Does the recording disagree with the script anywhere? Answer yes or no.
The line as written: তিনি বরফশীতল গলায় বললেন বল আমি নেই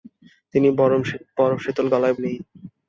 yes